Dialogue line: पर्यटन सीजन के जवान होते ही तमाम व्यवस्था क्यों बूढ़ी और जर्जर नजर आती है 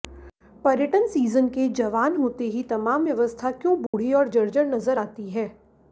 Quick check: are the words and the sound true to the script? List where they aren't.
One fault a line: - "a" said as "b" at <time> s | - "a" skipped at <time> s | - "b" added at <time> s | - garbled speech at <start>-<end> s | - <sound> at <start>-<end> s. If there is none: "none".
- dropout at 3.9-3.9 s